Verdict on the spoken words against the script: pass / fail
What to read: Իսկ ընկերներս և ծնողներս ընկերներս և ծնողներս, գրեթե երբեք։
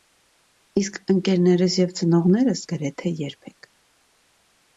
fail